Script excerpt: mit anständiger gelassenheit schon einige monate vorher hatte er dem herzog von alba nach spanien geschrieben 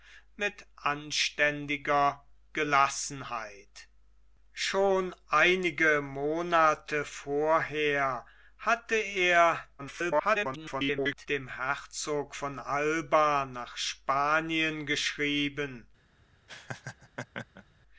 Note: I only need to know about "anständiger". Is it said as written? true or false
true